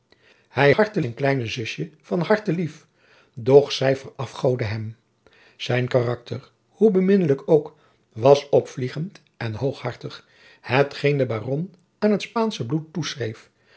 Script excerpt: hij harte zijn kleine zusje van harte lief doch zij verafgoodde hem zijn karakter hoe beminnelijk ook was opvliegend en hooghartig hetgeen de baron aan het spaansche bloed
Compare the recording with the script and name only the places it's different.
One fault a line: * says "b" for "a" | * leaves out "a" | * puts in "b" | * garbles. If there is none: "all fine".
all fine